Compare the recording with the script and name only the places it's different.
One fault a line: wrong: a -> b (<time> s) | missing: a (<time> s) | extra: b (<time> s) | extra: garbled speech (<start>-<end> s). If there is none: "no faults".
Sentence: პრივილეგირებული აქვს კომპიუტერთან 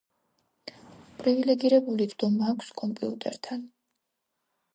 extra: წვდომა (2.1 s)